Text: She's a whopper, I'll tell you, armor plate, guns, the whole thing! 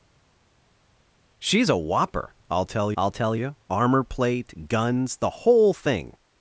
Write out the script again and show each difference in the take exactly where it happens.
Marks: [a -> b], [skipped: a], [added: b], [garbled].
She's a whopper, I'll tell [added: I'll tell] you, armor plate, guns, the whole thing!